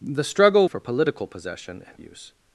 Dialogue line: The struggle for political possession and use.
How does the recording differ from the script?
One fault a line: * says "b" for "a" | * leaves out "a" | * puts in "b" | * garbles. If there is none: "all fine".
all fine